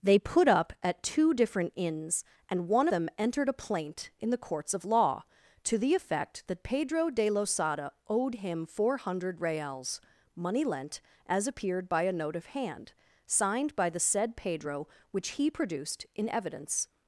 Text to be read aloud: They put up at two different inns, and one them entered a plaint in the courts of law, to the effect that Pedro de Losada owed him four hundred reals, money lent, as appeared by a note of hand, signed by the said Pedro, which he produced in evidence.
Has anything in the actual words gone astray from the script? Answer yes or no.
no